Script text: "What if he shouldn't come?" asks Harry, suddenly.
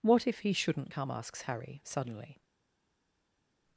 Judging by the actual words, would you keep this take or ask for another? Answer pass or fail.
pass